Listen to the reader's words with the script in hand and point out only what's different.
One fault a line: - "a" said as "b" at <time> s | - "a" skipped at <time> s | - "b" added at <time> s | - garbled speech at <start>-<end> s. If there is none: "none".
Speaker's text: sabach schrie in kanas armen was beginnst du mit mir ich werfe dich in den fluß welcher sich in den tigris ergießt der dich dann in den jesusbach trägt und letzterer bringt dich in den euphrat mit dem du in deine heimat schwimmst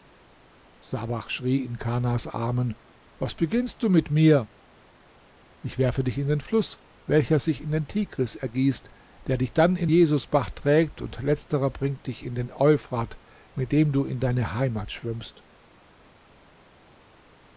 - "den" skipped at 9.9 s